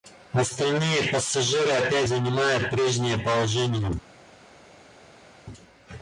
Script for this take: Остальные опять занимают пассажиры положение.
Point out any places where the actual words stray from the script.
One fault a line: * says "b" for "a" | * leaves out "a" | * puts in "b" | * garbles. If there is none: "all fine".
* puts in "пассажиры"
* says "прежнее" for "пассажиры"